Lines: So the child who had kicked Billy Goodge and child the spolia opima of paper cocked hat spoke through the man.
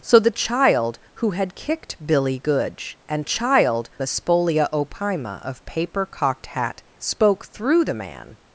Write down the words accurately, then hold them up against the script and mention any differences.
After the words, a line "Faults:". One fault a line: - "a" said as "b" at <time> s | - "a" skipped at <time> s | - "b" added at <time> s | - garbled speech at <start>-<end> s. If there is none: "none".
So the child who had kicked Billy Goodge and child the spolia opima of paper cocked hat spoke through the man.
Faults:
none